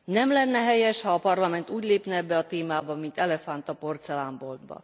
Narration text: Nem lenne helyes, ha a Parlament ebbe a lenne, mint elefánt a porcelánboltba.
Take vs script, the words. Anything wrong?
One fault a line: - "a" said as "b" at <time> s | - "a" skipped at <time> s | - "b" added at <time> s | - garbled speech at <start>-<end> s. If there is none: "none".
- "úgy lépne" added at 1.7 s
- "lenne" said as "témába" at 2.5 s